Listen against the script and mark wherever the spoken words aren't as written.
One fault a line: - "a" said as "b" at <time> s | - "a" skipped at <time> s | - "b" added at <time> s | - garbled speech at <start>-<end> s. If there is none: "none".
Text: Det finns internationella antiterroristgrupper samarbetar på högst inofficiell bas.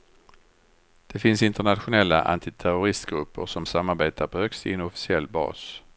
- "som" added at 3.5 s